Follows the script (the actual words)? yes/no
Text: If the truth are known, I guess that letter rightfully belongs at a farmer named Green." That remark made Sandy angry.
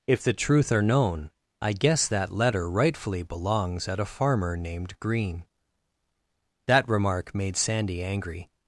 yes